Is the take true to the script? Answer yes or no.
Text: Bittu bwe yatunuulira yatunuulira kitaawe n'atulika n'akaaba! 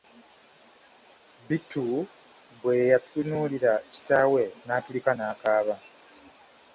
no